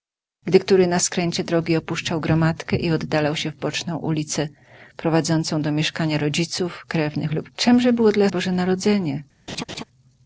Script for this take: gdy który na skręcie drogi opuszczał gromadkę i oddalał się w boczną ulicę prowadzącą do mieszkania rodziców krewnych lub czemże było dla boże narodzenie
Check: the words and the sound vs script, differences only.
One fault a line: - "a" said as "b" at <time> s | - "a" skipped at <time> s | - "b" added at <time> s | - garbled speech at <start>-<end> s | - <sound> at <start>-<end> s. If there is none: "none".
- laugh at 9.5-9.8 s